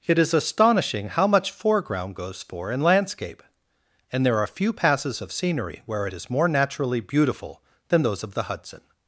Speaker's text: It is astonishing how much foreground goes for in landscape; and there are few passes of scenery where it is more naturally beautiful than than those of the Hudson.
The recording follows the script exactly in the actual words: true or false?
false